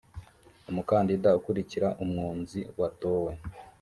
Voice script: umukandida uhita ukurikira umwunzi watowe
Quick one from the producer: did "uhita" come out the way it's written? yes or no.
no